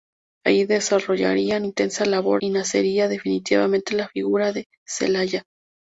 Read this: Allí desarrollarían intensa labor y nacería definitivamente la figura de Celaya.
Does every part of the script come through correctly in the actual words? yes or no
yes